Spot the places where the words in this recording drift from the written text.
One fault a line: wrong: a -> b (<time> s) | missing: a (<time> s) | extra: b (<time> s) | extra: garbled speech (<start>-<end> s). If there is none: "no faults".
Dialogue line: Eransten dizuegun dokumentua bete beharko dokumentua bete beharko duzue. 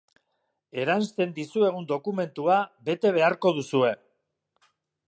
missing: dokumentua bete beharko (3.5 s)